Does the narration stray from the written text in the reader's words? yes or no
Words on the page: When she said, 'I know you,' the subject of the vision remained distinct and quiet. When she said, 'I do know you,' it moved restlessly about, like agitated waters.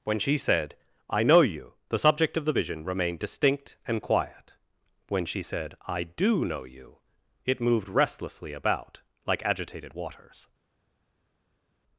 no